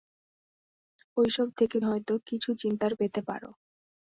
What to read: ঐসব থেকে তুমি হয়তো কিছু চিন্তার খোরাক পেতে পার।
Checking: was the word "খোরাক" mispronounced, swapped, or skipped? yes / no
yes